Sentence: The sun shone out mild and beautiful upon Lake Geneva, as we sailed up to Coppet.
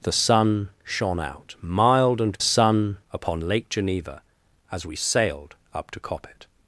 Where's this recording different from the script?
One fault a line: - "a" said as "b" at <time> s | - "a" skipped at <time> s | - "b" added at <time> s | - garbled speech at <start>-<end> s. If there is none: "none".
- "beautiful" said as "sun" at 2.4 s